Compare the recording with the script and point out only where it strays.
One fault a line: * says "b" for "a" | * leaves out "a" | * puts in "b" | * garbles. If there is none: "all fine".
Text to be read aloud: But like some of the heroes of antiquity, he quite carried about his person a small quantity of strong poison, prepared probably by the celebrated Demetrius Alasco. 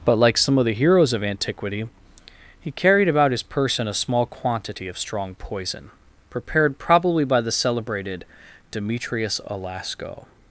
* leaves out "quite"